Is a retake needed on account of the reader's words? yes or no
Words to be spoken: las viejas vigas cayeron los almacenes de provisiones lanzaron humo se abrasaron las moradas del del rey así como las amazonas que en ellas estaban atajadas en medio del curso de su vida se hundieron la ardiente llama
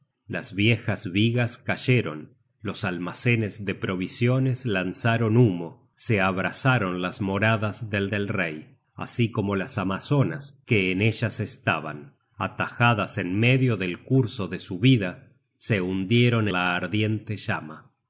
no